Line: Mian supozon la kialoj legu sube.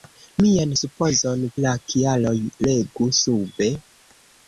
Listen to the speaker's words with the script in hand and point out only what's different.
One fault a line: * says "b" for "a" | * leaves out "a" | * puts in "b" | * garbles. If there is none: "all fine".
all fine